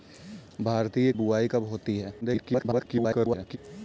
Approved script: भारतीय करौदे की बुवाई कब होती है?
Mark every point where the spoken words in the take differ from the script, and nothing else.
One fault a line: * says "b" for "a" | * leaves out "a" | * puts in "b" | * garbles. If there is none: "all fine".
* leaves out "करौदे की"
* garbles